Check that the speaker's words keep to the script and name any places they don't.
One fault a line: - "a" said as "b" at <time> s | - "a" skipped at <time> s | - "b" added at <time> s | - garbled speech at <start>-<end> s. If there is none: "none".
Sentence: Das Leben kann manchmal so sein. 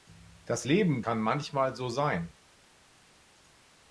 none